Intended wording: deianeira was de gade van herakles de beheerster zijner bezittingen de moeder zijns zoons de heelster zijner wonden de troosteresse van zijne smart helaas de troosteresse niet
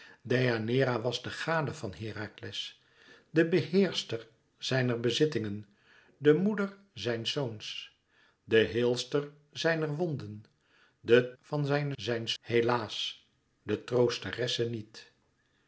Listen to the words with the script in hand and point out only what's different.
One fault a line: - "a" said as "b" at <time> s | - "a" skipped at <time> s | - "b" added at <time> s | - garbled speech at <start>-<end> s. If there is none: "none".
- "troosteresse" skipped at 11.3 s
- "smart" said as "zijns" at 11.9 s